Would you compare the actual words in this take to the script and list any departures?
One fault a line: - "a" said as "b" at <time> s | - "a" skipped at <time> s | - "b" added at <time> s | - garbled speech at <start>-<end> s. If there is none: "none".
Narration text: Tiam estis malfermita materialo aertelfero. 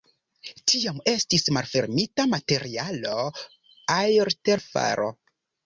none